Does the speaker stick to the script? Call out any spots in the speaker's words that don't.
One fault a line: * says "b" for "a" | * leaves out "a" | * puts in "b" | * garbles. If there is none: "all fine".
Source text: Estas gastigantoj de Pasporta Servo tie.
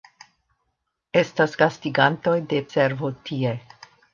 * leaves out "Pasporta"